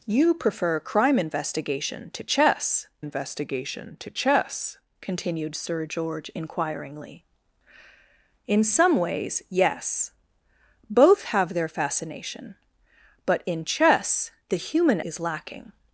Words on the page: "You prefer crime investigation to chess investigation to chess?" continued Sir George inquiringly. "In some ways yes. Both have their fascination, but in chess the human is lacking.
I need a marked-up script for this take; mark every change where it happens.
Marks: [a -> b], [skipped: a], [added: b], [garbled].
"You prefer crime investigation to chess investigation to chess?" continued Sir George inquiringly. "In some ways yes. Both have their fascination, but in chess the human is lacking.